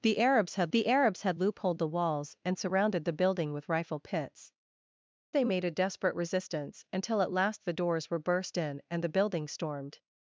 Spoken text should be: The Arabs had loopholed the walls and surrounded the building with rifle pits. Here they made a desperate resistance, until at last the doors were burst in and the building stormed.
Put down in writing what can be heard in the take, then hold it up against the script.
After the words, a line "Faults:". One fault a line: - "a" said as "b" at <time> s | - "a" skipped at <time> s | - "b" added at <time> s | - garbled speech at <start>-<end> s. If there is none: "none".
The Arabs had the Arabs had loopholed the walls and surrounded the building with rifle pits. They made a desperate resistance, until at last the doors were burst in and the building stormed.
Faults:
- "the Arabs had" added at 0.7 s
- "Here" skipped at 4.5 s